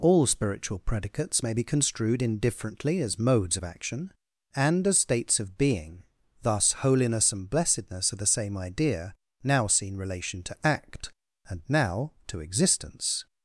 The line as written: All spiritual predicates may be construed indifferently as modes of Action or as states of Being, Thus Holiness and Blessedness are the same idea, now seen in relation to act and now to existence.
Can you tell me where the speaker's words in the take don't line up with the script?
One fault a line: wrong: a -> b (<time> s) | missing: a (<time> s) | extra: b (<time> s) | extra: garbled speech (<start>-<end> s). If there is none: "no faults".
wrong: or -> and (4.5 s)
missing: in (10.0 s)